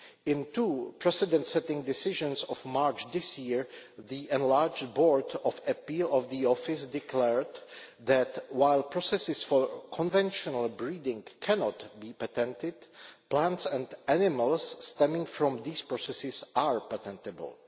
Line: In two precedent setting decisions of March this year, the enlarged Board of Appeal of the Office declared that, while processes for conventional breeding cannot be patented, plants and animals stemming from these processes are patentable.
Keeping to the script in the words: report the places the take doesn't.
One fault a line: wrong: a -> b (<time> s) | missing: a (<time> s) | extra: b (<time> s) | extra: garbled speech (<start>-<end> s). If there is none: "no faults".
no faults